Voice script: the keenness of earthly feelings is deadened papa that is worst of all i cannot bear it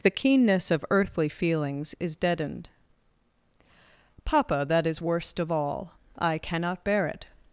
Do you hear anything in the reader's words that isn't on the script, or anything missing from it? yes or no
no